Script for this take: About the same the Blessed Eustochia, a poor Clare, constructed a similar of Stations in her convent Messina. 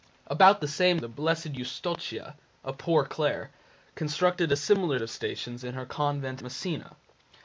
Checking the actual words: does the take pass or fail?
pass